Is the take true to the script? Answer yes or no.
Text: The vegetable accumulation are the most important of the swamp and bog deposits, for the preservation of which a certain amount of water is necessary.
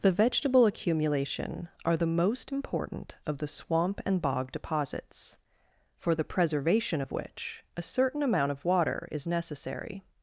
yes